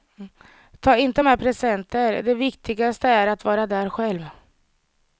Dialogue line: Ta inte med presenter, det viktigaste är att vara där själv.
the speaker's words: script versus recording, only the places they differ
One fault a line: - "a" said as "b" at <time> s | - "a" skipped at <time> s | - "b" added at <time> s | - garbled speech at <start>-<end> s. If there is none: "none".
none